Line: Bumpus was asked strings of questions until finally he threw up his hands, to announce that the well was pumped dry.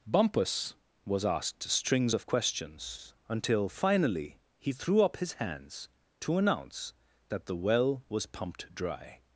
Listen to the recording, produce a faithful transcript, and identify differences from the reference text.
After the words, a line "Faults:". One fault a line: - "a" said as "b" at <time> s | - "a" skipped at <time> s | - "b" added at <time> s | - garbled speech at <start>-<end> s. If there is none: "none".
Bumpus was asked strings of questions until finally he threw up his hands, to announce that the well was pumped dry.
Faults:
none